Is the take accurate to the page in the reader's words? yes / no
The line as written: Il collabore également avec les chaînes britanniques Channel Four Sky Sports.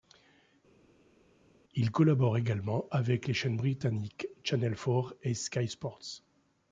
no